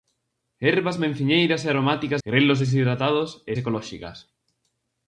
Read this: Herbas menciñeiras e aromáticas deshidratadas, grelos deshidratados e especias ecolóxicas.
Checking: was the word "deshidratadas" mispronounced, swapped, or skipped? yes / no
yes